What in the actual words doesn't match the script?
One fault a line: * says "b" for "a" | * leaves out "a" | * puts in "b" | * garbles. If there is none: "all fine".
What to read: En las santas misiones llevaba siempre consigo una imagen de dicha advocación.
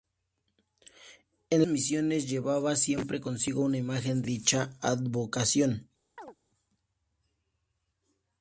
* leaves out "las santas"
* leaves out "de"